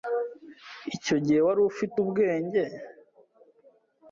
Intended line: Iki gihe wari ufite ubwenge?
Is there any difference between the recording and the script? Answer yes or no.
yes